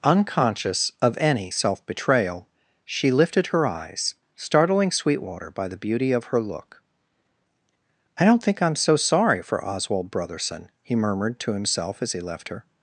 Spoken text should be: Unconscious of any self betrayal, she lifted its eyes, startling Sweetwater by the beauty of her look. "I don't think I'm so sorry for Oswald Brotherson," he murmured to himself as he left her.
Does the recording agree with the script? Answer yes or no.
no